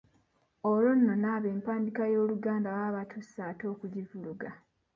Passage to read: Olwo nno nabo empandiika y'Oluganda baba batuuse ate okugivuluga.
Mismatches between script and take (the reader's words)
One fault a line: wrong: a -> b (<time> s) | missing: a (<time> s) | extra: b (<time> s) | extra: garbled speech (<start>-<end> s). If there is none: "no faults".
no faults